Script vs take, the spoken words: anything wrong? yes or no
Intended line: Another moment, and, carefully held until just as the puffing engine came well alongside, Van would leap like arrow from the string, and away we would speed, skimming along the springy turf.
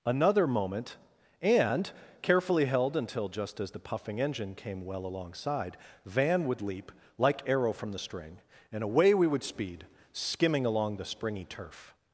no